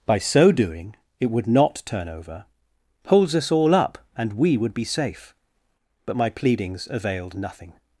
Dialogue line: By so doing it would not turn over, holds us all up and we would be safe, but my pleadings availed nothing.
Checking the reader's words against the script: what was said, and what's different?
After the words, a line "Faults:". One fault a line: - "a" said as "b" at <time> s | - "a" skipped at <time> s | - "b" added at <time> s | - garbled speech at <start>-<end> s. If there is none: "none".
By so doing it would not turn over, holds us all up and we would be safe, but my pleadings availed nothing.
Faults:
none